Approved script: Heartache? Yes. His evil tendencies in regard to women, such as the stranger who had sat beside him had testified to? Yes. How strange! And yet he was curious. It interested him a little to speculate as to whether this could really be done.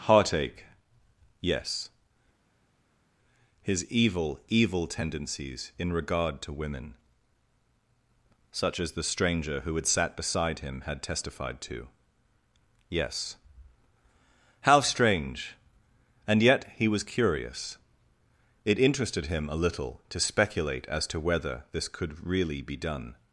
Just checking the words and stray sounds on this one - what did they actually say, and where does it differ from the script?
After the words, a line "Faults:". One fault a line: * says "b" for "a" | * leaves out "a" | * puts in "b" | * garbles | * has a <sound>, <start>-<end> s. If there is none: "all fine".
Heartache? Yes. His evil evil tendencies in regard to women, such as the stranger who had sat beside him had testified to? Yes. How strange! And yet he was curious. It interested him a little to speculate as to whether this could really be done.
Faults:
* puts in "evil"